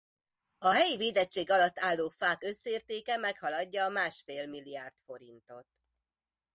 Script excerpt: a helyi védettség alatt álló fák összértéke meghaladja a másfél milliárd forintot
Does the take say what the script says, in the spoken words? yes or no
yes